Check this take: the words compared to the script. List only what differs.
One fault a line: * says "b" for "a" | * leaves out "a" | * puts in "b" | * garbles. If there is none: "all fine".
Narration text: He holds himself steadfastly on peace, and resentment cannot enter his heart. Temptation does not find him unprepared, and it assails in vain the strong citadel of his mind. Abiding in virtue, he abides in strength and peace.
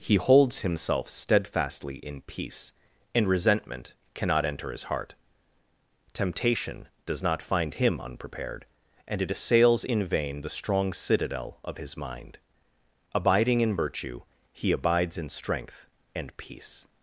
* says "in" for "on"